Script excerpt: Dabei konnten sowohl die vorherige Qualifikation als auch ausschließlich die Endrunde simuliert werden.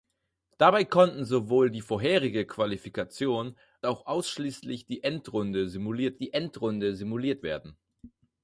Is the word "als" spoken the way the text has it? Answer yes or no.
no